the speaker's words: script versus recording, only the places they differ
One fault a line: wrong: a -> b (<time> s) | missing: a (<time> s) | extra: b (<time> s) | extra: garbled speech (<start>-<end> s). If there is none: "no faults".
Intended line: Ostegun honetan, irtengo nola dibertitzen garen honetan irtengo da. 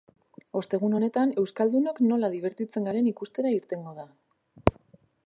wrong: irtengo -> euskaldunok (1.4 s)
wrong: honetan -> ikustera (3.1 s)